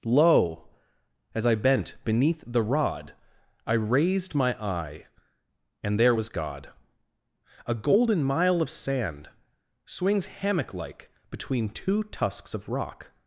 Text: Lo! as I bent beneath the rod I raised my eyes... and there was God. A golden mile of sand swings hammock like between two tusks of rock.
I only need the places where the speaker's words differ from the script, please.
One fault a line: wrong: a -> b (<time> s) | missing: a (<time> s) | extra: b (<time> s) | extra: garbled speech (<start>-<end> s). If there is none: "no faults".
wrong: eyes -> eye (4.6 s)